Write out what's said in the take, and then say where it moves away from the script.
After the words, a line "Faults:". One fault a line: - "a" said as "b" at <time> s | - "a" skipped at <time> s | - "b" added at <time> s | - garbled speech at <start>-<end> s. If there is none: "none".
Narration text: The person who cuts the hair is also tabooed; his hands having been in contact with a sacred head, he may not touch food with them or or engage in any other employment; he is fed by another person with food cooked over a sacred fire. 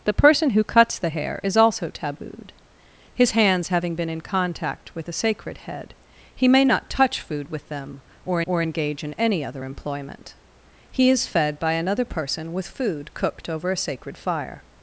The person who cuts the hair is also tabooed; his hands having been in contact with a sacred head, he may not touch food with them or or engage in any other employment; he is fed by another person with food cooked over a sacred fire.
Faults:
none